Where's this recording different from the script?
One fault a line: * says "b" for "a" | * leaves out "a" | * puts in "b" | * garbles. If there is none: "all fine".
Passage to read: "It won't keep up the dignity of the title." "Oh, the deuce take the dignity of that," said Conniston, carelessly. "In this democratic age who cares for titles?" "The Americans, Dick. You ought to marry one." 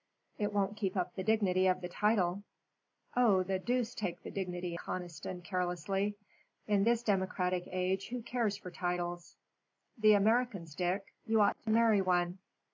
* leaves out "of that said"